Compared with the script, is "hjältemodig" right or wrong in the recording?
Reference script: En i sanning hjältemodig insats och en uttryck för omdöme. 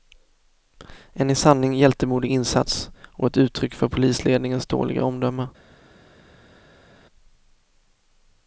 right